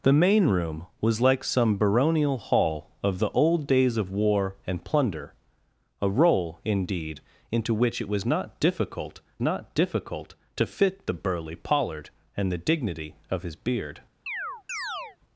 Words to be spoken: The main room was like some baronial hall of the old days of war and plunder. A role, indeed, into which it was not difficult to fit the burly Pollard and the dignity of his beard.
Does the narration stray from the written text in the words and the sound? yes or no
yes